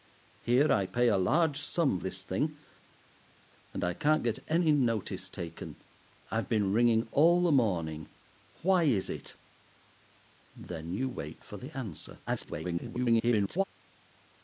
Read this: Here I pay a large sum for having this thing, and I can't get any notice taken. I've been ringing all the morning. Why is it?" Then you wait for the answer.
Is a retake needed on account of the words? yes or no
yes